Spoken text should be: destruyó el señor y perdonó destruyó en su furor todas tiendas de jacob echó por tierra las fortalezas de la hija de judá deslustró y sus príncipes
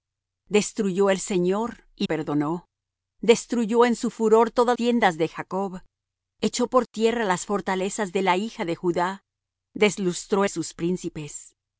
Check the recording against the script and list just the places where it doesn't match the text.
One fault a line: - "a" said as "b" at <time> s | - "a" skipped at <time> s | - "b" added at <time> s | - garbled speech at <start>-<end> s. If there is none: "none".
none